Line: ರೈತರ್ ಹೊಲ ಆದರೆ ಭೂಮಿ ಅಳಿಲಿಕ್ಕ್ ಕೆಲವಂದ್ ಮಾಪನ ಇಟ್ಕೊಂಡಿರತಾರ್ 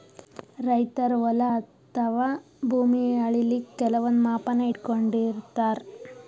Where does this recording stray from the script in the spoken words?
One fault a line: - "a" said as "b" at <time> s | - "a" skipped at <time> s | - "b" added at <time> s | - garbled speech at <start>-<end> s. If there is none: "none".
- "ಆದರೆ" said as "ಅಥವಾ" at 1.6 s